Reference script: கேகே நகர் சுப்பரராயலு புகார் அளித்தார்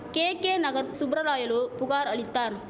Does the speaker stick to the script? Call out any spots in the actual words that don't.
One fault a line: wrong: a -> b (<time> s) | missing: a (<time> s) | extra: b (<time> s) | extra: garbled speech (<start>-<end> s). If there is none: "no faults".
no faults